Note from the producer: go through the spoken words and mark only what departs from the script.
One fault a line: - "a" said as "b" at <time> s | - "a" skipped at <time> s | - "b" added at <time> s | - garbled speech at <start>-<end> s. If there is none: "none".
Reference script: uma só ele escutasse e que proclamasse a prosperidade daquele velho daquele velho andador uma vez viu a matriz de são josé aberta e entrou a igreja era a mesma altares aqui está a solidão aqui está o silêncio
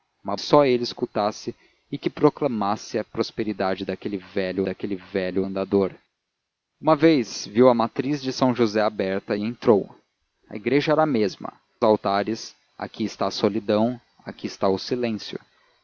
none